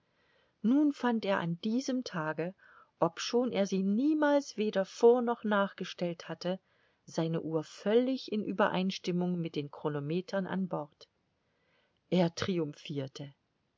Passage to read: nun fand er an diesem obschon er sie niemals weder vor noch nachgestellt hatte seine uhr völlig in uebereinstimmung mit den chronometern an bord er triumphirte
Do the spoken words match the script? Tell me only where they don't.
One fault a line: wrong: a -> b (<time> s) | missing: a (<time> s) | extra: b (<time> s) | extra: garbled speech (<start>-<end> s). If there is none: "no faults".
extra: tage (2.0 s)